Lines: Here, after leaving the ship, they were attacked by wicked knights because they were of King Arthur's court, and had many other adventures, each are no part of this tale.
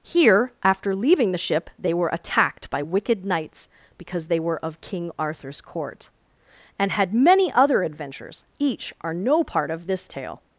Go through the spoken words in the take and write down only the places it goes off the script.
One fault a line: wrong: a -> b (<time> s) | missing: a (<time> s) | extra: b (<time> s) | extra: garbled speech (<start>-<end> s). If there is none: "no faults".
no faults